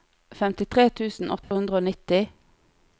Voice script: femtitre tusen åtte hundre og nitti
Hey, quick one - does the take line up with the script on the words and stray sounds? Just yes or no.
no